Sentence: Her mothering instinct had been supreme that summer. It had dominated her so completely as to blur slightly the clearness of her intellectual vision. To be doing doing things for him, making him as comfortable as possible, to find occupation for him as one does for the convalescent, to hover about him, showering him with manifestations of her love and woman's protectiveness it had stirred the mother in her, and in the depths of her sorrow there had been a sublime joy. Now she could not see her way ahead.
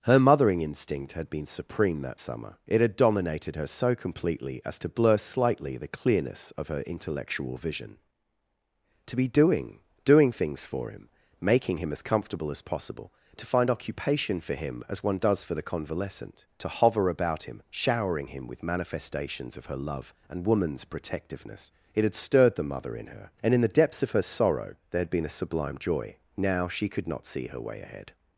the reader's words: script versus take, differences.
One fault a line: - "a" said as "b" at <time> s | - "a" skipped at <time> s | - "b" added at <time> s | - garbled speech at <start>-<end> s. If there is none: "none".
none